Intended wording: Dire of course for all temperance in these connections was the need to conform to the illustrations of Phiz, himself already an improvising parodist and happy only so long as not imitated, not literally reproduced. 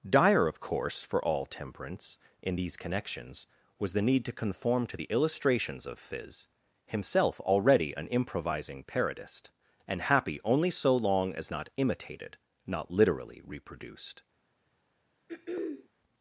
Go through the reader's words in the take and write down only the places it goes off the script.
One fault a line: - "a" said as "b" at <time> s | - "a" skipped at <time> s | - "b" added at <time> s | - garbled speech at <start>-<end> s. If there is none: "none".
none